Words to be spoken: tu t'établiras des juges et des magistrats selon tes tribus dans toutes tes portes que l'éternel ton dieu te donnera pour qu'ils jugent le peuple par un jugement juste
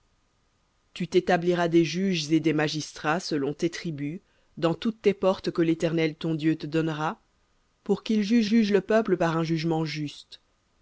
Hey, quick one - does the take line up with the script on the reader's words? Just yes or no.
no